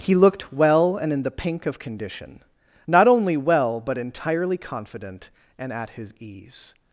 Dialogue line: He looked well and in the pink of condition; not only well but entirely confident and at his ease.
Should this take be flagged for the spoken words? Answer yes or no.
no